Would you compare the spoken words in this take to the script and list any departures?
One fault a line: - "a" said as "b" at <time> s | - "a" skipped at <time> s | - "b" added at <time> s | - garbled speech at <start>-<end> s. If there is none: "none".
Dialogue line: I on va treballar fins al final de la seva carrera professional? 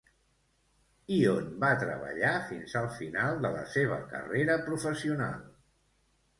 none